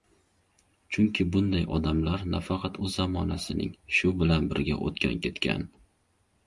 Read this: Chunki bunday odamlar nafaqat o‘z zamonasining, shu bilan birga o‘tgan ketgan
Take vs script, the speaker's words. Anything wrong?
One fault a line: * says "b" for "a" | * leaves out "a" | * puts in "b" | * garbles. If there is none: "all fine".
all fine